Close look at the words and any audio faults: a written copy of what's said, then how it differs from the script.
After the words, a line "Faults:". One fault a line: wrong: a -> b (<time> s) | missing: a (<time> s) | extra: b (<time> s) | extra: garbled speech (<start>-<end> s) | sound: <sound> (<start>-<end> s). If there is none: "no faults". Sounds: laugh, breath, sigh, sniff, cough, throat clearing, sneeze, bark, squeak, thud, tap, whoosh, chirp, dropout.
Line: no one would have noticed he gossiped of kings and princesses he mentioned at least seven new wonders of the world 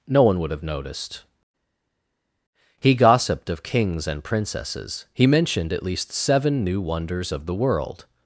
no one would have noticed he gossiped of kings and princesses he mentioned at least seven new wonders of the world
Faults:
no faults